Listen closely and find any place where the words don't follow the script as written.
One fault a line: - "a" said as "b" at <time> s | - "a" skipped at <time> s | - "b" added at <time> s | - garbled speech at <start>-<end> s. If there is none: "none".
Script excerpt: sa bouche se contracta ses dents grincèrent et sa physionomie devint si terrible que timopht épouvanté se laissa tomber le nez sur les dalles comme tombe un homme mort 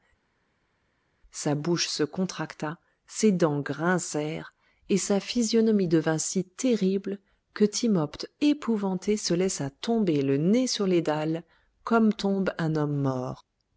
none